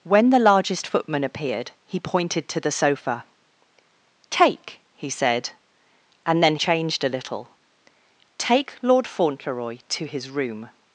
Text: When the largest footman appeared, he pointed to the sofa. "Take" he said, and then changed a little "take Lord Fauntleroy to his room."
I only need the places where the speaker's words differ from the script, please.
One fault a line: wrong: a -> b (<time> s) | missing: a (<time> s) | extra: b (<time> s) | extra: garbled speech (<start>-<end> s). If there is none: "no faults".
no faults